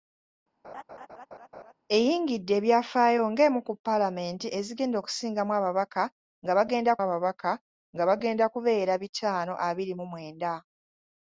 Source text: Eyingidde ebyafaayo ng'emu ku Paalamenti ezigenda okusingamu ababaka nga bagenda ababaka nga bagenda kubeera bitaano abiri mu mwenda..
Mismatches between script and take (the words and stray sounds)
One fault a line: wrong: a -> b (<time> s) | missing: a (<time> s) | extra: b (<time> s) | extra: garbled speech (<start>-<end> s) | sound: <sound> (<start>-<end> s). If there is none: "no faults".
sound: laugh (0.6-1.7 s)